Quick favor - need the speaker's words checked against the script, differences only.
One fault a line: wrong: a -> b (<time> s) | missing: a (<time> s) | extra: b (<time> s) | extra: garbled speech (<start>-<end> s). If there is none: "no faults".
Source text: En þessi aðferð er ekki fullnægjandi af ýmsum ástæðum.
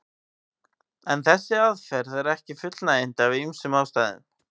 no faults